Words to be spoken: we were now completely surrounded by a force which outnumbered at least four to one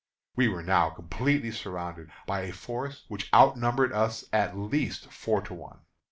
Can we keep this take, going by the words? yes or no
no